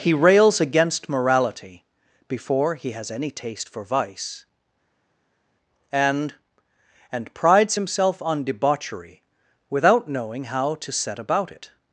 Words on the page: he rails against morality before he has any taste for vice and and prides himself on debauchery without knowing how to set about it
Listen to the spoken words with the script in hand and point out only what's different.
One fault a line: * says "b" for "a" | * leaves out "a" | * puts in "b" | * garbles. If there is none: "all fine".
all fine